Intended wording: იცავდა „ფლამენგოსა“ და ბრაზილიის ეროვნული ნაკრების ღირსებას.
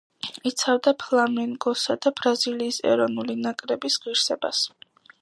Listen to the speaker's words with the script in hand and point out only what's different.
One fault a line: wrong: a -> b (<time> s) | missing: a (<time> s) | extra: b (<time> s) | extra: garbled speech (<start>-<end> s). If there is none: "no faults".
no faults